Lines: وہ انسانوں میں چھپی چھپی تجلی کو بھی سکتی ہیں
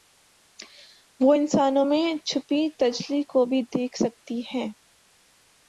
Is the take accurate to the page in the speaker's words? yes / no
no